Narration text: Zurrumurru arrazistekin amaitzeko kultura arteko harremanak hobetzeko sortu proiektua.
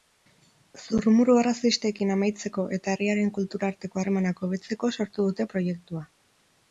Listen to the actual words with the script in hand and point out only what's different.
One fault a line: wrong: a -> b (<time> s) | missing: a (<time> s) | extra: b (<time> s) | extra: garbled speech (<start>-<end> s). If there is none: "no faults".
extra: eta herriaren (2.8 s)
extra: dute (5.3 s)